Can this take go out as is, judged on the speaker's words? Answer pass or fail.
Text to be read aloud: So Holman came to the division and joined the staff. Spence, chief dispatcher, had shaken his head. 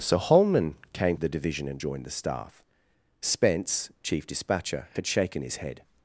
fail